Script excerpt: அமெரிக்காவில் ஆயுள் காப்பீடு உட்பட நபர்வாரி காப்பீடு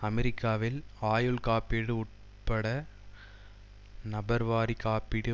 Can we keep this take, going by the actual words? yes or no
yes